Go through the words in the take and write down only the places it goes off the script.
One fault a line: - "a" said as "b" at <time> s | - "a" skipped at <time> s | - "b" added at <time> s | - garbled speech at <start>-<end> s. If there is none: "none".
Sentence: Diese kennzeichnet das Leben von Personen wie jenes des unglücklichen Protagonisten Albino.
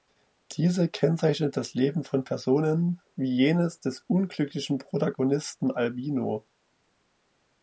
none